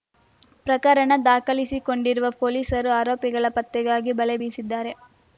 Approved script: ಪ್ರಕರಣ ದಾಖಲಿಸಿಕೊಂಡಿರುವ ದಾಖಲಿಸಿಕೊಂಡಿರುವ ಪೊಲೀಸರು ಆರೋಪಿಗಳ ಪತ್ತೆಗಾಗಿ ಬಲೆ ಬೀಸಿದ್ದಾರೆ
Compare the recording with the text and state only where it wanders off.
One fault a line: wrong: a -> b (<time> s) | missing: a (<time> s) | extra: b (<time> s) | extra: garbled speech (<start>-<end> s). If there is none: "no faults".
missing: ದಾಖಲಿಸಿಕೊಂಡಿರುವ (2.3 s)